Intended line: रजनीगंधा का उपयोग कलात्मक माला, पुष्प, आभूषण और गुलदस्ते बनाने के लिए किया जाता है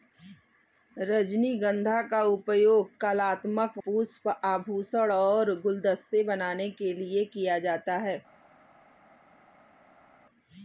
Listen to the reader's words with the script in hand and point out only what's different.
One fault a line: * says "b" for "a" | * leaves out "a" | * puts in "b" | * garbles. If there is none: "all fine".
* leaves out "माला"